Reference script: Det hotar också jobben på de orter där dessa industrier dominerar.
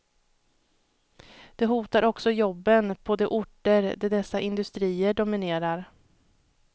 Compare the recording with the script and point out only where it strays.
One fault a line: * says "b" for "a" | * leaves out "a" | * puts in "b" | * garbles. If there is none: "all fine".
all fine